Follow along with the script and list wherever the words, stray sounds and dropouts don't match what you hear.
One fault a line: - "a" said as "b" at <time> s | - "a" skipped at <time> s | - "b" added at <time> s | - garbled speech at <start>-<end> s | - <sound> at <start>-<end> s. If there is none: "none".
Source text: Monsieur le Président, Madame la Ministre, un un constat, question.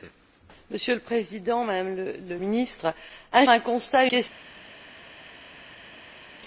none